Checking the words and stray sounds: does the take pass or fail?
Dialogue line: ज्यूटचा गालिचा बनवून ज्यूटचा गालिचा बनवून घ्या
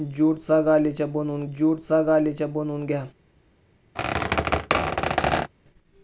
fail